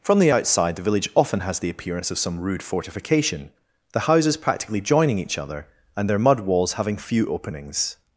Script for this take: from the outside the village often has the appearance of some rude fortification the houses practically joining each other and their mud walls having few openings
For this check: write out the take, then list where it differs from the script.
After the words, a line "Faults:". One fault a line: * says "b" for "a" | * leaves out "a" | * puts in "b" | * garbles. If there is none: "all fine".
from the outside the village often has the appearance of some rude fortification the houses practically joining each other and their mud walls having few openings
Faults:
all fine